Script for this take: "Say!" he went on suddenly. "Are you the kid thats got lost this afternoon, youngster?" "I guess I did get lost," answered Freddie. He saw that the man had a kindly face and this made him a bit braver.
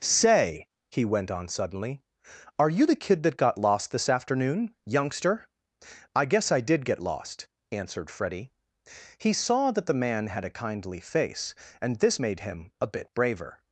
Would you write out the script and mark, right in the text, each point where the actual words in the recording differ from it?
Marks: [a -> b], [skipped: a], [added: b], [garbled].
"Say!" he went on suddenly. "Are you the kid [thats -> that] got lost this afternoon, youngster?" "I guess I did get lost," answered Freddie. He saw that the man had a kindly face and this made him a bit braver.